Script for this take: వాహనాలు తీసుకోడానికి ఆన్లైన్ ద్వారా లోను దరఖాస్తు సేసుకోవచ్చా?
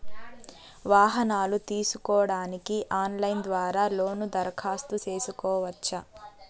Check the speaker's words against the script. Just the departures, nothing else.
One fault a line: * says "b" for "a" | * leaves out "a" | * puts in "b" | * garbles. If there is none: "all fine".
all fine